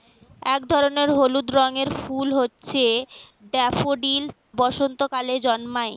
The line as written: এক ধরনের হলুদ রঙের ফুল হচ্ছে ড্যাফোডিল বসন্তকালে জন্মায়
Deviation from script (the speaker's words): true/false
false